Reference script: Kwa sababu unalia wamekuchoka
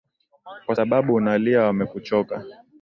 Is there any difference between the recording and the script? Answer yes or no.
no